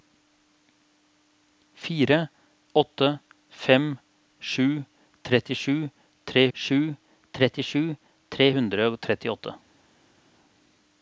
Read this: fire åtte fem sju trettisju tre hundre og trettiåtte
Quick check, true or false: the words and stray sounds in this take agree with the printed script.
false